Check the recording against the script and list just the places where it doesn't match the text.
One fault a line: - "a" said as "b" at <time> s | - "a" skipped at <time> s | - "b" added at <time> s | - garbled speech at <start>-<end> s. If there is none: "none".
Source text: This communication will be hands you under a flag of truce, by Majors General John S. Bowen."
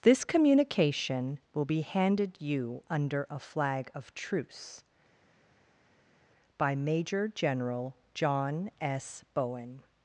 - "hands" said as "handed" at 1.8 s
- "Majors" said as "Major" at 6.8 s